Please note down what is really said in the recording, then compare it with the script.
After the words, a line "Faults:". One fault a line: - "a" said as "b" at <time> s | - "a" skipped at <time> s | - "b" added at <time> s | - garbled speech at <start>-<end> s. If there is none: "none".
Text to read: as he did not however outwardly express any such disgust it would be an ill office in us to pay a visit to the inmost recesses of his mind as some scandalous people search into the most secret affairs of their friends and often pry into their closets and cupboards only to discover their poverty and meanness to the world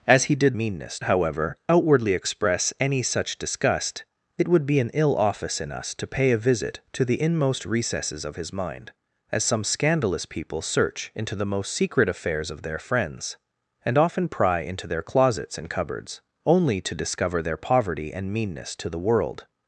as he did meanness however outwardly express any such disgust it would be an ill office in us to pay a visit to the inmost recesses of his mind as some scandalous people search into the most secret affairs of their friends and often pry into their closets and cupboards only to discover their poverty and meanness to the world
Faults:
- "not" said as "meanness" at 0.6 s